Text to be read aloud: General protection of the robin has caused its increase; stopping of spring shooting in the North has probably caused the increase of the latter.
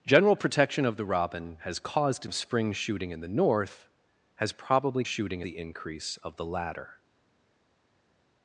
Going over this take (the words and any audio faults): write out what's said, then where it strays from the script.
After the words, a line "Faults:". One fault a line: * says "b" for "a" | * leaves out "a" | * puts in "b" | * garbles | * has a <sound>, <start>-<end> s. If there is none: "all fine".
General protection of the robin has caused of spring shooting in the North has probably shooting the increase of the latter.
Faults:
* leaves out "its increase stopping"
* says "shooting" for "caused"